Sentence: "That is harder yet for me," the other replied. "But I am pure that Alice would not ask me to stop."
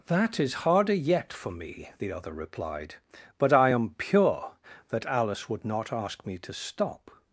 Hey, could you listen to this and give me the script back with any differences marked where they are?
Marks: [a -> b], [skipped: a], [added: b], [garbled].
"That is harder yet for me," the other replied. "But I am pure that Alice would not ask me to stop."